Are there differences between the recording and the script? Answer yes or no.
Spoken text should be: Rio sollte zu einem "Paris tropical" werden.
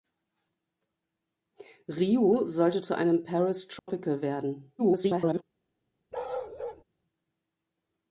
yes